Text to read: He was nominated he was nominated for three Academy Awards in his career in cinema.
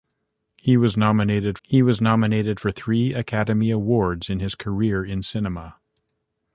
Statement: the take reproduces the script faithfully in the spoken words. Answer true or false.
true